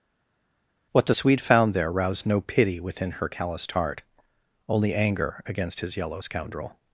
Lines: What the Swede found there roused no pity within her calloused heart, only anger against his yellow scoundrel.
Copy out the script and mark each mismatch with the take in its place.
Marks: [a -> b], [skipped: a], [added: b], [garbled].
What the Swede found there roused no pity within her calloused heart, only anger against his yellow scoundrel.